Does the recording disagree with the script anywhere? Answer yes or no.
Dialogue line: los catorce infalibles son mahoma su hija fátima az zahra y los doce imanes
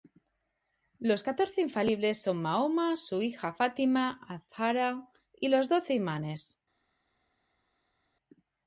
no